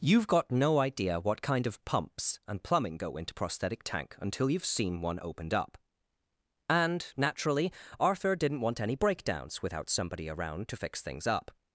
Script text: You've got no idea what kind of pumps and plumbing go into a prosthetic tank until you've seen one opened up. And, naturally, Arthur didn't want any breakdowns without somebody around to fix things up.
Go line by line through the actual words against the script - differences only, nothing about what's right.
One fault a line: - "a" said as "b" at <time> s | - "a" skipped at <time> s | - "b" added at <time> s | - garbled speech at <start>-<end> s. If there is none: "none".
- "a" skipped at 3.4 s